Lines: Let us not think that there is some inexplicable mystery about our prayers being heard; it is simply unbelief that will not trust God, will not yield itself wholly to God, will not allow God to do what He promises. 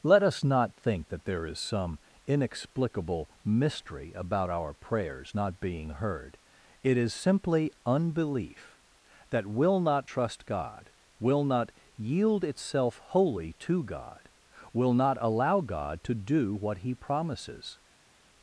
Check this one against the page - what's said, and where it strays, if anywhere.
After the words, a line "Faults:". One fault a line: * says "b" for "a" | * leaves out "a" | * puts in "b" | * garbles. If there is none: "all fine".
Let us not think that there is some inexplicable mystery about our prayers not being heard; it is simply unbelief that will not trust God, will not yield itself wholly to God, will not allow God to do what He promises.
Faults:
* puts in "not"